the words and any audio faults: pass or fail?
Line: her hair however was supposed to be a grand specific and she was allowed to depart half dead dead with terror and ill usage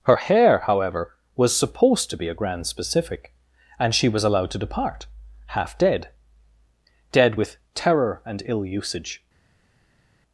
pass